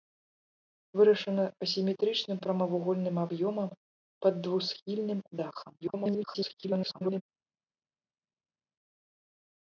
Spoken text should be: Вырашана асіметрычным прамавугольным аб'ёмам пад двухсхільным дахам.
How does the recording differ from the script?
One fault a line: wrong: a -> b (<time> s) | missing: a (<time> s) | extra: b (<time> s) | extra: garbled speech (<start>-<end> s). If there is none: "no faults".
extra: garbled speech (5.8-7.2 s)